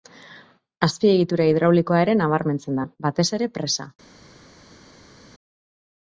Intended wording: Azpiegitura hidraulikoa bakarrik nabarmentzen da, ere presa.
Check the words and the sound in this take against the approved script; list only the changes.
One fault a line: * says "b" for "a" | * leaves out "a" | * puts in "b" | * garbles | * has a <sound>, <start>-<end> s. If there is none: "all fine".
* says "ere" for "bakarrik"
* puts in "batez"